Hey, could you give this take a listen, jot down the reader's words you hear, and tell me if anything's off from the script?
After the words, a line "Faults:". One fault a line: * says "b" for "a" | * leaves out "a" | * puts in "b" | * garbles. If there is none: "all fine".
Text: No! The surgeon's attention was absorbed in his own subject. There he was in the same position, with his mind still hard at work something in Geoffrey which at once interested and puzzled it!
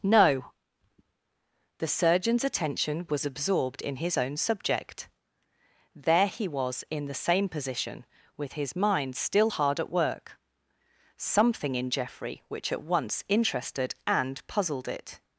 No! The surgeon's attention was absorbed in his own subject. There he was in the same position, with his mind still hard at work something in Geoffrey which at once interested and puzzled it!
Faults:
all fine